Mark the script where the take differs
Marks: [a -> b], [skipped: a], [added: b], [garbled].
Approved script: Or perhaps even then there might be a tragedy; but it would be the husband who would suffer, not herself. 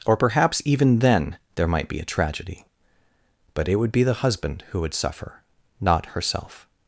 Or perhaps even then there might be a tragedy; but it would be the husband who would suffer, not herself.